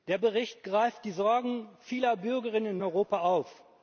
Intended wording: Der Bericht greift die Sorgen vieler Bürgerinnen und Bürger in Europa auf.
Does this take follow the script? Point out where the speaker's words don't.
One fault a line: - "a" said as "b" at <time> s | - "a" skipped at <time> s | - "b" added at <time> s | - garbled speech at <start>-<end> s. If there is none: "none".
- "und Bürger in" skipped at 2.8 s